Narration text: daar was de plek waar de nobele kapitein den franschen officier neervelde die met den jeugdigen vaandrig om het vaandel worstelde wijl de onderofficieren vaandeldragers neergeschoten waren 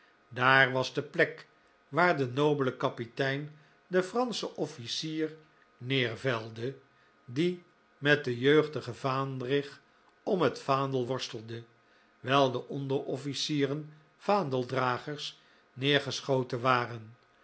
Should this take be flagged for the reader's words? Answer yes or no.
no